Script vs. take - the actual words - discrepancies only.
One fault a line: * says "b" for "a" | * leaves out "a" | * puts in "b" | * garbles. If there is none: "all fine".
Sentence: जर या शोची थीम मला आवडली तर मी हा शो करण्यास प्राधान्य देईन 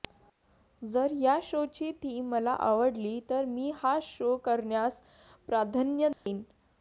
all fine